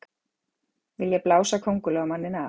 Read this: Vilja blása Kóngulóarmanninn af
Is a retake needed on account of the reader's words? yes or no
no